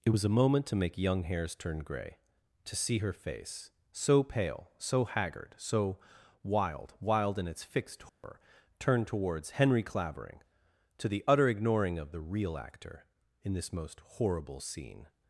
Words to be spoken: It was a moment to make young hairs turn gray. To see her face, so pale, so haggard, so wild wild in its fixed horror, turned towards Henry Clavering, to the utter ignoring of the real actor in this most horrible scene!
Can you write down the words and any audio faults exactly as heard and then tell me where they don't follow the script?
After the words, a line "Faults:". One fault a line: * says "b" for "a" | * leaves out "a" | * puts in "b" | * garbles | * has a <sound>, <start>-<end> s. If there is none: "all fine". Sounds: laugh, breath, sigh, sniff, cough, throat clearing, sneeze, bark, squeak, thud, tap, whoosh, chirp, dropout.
It was a moment to make young hairs turn gray. To see her face, so pale, so haggard, so wild wild in its fixed horror, turned towards Henry Clavering, to the utter ignoring of the real actor in this most horrible scene!
Faults:
* has a dropout, 8.1-8.2 s